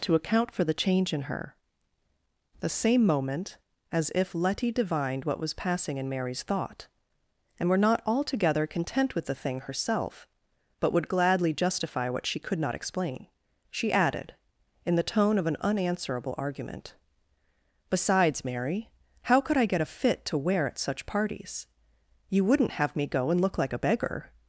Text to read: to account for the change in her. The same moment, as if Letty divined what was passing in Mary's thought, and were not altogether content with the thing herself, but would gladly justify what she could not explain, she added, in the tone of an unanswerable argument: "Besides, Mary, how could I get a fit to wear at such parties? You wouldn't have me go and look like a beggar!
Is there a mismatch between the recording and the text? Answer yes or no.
no